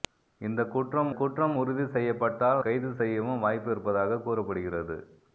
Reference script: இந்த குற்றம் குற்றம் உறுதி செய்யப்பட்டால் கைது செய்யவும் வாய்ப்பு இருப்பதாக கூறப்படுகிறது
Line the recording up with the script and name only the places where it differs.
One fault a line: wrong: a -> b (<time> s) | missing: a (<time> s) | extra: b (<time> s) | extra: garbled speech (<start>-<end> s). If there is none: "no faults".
no faults